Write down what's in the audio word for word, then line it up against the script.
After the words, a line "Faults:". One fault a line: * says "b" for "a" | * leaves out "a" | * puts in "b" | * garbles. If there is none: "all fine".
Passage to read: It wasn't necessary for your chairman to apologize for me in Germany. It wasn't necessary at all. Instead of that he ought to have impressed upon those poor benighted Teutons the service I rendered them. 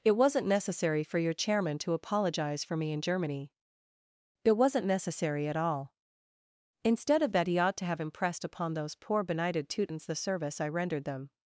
It wasn't necessary for your chairman to apologize for me in Germany. It wasn't necessary at all. Instead of that he ought to have impressed upon those poor benighted Teutons the service I rendered them.
Faults:
all fine